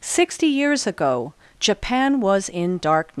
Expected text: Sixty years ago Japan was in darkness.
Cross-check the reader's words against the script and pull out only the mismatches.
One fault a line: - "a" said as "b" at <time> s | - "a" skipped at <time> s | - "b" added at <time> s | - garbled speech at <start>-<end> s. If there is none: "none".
none